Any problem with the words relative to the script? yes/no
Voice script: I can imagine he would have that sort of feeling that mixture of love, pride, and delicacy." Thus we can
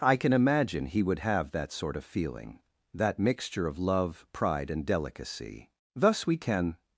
no